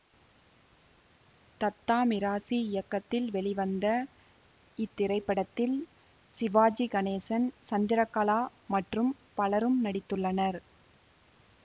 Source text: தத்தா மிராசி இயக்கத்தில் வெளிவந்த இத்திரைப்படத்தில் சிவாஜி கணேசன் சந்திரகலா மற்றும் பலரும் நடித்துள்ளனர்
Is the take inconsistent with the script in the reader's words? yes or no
no